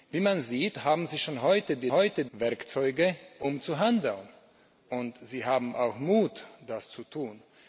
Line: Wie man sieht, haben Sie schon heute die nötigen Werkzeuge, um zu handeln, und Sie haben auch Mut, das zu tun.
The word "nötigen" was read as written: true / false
false